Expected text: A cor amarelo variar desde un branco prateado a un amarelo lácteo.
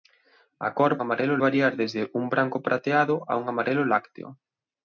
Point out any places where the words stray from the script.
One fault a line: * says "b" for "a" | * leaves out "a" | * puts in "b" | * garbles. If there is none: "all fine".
all fine